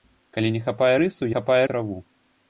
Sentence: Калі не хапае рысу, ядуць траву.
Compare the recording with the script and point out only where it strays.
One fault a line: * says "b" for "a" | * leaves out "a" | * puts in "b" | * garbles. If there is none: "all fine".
* says "хапае" for "ядуць"